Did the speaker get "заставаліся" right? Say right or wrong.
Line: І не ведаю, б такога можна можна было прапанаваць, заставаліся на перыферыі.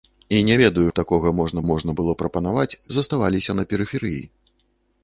right